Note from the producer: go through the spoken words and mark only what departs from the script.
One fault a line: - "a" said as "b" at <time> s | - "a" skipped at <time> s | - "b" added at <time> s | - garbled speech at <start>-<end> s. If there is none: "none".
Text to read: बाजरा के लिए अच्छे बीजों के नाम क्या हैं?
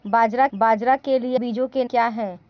- "बाजरा" added at 0.5 s
- "अच्छे" skipped at 1.4 s
- "नाम" skipped at 1.8 s